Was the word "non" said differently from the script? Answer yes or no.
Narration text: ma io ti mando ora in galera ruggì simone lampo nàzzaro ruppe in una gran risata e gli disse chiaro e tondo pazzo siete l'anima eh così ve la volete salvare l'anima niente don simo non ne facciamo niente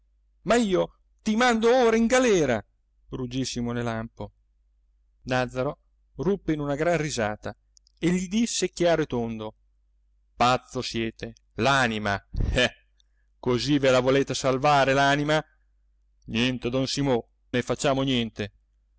yes